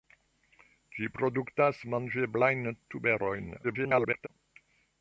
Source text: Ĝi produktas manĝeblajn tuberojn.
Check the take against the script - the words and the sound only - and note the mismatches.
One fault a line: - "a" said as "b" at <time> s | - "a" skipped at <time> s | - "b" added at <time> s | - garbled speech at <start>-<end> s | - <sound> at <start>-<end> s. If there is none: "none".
- garbled speech at 3.6-4.3 s